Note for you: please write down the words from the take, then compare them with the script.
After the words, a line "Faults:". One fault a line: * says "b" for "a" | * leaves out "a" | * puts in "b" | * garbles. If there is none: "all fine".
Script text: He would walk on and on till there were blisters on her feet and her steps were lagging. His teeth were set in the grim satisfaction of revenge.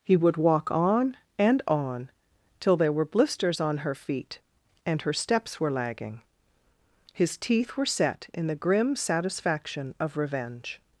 He would walk on and on till there were blisters on her feet and her steps were lagging. His teeth were set in the grim satisfaction of revenge.
Faults:
all fine